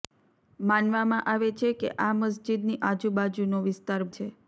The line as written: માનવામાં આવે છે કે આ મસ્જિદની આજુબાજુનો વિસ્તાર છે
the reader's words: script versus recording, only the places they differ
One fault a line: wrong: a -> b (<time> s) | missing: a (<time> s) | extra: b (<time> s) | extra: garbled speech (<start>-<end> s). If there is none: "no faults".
no faults